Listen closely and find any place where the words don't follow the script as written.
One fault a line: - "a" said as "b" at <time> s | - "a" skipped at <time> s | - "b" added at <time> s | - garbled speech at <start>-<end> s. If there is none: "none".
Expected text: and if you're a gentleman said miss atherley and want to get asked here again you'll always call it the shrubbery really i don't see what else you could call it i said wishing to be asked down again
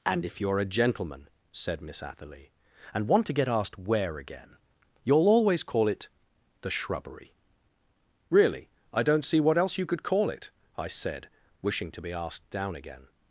- "here" said as "where" at 3.8 s